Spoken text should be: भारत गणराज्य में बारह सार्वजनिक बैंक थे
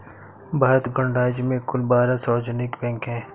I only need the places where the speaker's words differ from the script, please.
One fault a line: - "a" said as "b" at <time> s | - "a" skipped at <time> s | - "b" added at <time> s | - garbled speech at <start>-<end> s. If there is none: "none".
- "कुल" added at 1.6 s
- "थे" said as "हैं" at 3.1 s